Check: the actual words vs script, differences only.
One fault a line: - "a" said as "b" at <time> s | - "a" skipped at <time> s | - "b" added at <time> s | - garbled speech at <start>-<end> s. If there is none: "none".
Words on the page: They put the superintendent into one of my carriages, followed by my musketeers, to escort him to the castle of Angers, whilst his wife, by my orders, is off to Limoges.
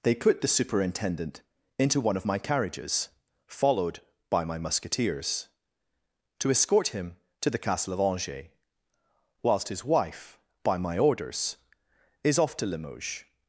none